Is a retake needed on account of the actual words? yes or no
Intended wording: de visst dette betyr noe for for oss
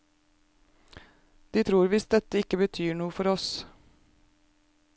yes